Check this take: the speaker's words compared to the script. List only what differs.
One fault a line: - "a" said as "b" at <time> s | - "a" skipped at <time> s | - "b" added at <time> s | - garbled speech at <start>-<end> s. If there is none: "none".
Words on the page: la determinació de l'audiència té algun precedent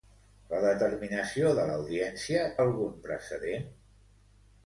- "té" skipped at 2.5 s